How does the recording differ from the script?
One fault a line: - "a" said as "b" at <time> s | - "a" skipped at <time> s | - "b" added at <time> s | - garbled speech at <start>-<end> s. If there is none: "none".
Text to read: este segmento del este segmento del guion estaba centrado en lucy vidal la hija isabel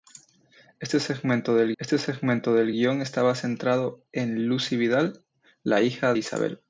none